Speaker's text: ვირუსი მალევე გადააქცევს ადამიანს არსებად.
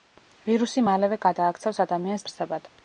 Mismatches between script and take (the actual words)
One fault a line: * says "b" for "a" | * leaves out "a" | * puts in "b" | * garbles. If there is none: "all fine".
all fine